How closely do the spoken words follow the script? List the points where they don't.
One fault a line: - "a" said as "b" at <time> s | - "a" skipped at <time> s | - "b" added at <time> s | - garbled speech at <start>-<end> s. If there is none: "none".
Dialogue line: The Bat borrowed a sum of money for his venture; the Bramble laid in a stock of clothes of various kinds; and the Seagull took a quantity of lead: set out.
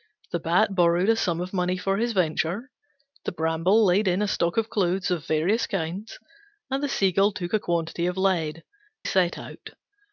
none